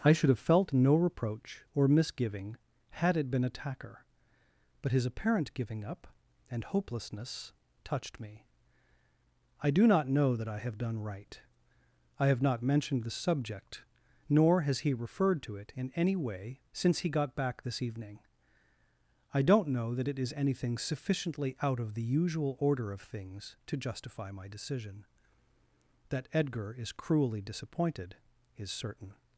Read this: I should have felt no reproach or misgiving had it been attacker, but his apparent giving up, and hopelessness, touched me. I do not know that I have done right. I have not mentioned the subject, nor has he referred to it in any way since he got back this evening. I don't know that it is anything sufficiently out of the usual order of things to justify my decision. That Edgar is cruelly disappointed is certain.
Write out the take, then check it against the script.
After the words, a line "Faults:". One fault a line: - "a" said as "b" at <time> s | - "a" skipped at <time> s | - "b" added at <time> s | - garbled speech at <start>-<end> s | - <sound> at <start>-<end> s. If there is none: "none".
I should have felt no reproach or misgiving had it been attacker, but his apparent giving up, and hopelessness, touched me. I do not know that I have done right. I have not mentioned the subject, nor has he referred to it in any way since he got back this evening. I don't know that it is anything sufficiently out of the usual order of things to justify my decision. That Edgar is cruelly disappointed is certain.
Faults:
none